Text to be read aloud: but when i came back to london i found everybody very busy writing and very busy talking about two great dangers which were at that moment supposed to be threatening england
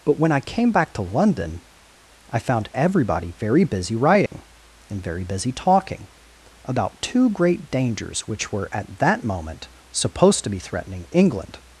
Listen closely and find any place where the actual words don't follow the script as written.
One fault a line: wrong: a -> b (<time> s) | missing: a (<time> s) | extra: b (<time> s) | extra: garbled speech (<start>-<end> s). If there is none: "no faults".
no faults